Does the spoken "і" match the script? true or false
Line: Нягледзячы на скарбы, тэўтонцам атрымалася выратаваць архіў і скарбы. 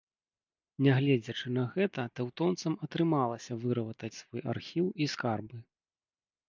true